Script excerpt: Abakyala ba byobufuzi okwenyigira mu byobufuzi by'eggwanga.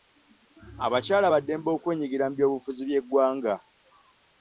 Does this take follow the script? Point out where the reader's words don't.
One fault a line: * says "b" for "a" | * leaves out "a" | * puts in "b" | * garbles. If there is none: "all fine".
* says "ddembe" for "byobufuzi"